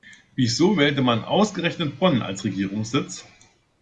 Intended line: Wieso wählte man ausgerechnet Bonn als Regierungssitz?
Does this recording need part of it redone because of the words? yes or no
no